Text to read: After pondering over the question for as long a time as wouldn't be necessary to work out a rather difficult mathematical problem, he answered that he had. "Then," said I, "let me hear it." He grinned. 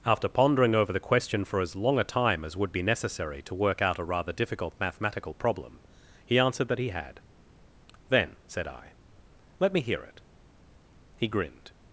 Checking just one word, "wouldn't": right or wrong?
wrong